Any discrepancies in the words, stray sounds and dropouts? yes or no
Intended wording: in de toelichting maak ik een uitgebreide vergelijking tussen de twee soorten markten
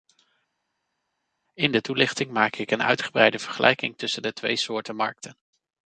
no